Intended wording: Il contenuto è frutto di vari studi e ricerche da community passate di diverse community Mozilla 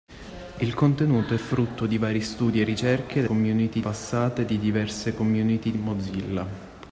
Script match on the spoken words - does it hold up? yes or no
yes